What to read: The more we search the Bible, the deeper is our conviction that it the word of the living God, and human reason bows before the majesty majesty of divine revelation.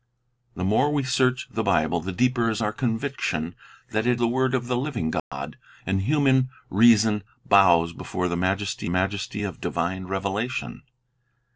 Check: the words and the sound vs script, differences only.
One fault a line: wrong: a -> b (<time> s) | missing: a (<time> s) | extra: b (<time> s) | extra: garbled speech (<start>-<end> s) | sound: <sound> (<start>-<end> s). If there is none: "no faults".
sound: dropout (5.2-5.3 s)